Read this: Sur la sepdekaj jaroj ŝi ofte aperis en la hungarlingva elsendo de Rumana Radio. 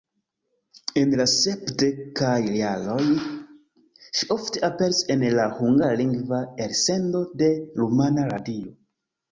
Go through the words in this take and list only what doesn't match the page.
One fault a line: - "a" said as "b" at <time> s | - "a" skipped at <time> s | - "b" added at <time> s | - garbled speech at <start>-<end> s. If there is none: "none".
- "Sur" said as "En" at 1.0 s